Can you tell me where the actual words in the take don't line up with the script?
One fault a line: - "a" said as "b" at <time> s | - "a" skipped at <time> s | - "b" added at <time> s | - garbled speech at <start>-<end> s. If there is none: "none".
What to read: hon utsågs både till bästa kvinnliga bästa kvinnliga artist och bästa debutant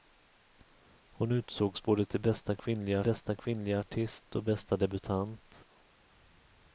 none